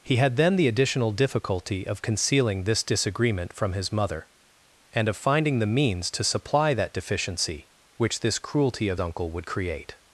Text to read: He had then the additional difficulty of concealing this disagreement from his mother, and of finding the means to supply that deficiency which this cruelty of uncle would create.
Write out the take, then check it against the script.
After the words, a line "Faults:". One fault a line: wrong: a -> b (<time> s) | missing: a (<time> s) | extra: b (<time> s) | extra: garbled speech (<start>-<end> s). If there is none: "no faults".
He had then the additional difficulty of concealing this disagreement from his mother, and of finding the means to supply that deficiency which this cruelty of uncle would create.
Faults:
no faults